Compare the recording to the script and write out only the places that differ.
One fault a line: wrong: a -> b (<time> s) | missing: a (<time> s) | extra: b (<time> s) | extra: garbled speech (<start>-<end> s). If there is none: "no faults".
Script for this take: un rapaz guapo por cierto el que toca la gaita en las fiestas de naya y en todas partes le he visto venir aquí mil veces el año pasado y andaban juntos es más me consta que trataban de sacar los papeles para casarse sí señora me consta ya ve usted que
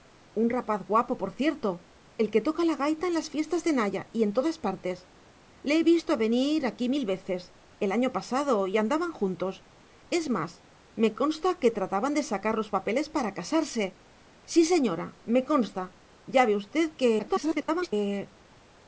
extra: garbled speech (17.2-17.9 s)